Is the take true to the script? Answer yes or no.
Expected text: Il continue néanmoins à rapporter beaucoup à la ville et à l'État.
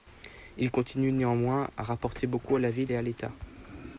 yes